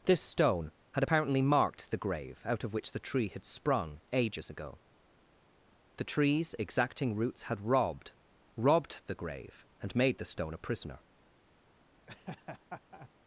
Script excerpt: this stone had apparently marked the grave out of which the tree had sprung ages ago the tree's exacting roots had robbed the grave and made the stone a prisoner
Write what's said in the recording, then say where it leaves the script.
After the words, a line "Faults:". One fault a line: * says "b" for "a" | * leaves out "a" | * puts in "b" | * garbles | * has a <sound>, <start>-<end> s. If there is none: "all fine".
this stone had apparently marked the grave out of which the tree had sprung ages ago the tree's exacting roots had robbed robbed the grave and made the stone a prisoner
Faults:
* puts in "robbed"
* has a laugh, 12.1-13.1 s